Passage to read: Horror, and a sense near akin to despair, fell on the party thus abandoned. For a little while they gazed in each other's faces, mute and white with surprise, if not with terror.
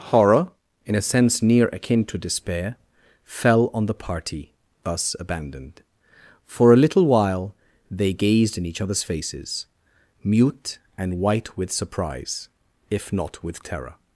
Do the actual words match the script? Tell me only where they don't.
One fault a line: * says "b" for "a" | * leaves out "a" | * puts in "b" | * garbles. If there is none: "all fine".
* says "in" for "and"